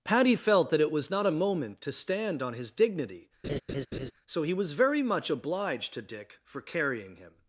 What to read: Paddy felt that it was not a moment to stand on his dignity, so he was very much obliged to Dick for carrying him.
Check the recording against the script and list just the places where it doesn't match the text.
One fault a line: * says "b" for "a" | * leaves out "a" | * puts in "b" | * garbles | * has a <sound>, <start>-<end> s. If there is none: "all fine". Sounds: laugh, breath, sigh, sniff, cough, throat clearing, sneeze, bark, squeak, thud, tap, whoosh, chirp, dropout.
* has a laugh, 3.4-4.1 s